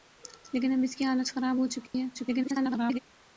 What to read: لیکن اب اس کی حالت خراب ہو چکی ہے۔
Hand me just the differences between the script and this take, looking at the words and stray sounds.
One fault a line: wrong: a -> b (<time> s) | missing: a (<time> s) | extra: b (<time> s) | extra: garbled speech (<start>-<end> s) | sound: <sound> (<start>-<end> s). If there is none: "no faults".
sound: dropout (1.9-1.9 s)
extra: garbled speech (2.1-3.0 s)